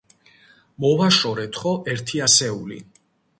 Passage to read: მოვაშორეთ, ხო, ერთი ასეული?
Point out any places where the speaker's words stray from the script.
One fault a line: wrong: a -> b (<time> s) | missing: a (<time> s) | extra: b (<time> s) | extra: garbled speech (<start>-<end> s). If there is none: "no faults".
no faults